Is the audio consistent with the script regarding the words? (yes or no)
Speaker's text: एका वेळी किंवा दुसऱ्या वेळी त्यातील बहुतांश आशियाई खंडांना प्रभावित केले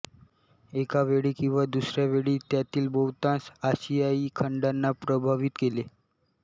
yes